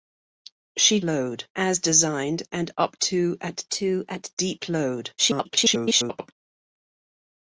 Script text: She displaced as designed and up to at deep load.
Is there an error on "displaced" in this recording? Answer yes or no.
yes